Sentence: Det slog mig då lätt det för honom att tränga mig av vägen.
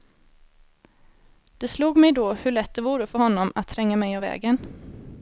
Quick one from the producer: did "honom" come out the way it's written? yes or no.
yes